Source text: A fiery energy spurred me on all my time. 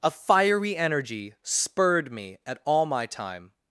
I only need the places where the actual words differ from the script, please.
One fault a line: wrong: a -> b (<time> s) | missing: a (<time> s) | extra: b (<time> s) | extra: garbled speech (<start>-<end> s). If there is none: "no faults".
wrong: on -> at (2.4 s)